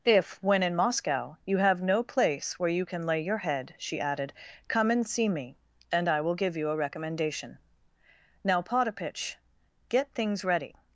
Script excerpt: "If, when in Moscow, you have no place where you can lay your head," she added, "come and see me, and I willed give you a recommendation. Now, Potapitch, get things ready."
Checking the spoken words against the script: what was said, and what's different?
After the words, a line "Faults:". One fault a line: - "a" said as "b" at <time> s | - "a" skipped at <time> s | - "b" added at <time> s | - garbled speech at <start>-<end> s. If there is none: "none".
"If, when in Moscow, you have no place where you can lay your head," she added, "come and see me, and I will give you a recommendation. Now, Potapitch, get things ready."
Faults:
- "willed" said as "will" at 6.2 s